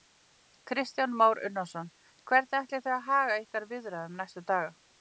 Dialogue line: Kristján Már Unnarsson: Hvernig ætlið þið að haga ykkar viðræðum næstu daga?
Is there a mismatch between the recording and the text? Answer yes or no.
no